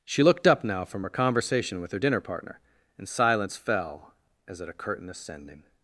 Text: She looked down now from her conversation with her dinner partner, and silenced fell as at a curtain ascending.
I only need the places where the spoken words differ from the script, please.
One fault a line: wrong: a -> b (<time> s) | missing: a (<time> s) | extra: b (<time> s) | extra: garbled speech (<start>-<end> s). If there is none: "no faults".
wrong: down -> up (0.5 s)
wrong: silenced -> silence (3.1 s)